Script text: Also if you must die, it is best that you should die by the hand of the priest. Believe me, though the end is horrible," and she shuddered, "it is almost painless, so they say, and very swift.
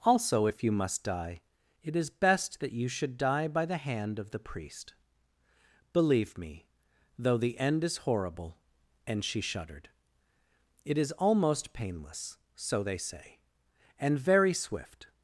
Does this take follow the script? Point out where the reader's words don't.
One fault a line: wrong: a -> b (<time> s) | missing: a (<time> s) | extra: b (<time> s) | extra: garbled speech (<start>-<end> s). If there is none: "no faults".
no faults